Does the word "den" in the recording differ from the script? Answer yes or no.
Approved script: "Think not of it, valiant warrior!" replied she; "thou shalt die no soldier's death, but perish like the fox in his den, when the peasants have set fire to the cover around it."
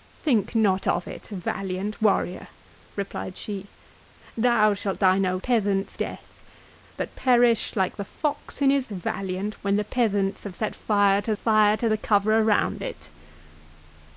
yes